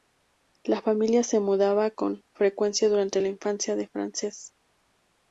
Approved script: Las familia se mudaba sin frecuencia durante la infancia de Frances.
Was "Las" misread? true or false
true